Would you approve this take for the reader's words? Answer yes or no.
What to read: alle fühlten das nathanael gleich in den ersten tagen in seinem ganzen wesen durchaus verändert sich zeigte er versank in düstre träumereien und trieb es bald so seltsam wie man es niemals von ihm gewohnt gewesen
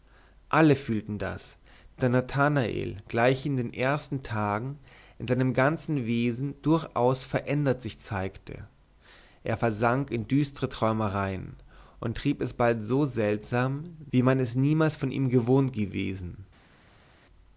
no